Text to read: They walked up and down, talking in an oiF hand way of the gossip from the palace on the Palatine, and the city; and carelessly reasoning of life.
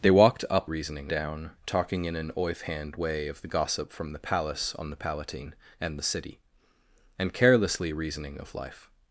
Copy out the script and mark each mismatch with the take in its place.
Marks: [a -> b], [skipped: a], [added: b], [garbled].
They walked up [and -> reasoning] down, talking in an oiF hand way of the gossip from the palace on the Palatine, and the city; and carelessly reasoning of life.